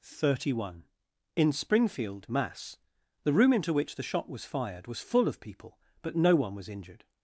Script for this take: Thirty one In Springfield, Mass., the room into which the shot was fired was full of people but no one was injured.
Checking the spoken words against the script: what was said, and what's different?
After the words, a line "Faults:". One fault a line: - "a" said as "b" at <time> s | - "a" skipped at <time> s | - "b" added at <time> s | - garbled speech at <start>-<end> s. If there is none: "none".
Thirty one In Springfield, Mass., the room into which the shot was fired was full of people but no one was injured.
Faults:
none